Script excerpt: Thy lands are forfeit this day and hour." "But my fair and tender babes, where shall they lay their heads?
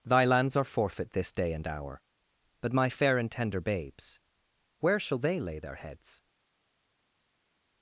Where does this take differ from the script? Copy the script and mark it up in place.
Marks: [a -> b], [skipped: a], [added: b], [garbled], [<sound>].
Thy lands are forfeit this day and hour." "But my fair and tender babes, where shall they lay their heads?